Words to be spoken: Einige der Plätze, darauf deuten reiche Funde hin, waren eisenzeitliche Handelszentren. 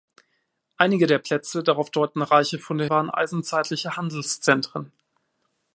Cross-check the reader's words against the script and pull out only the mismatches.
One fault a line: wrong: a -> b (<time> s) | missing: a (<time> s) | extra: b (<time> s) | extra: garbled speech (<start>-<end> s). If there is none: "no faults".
missing: hin (2.9 s)